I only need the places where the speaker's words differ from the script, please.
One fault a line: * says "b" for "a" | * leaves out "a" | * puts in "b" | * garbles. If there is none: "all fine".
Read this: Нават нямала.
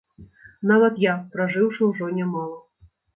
* puts in "я пражыўшы ўжо"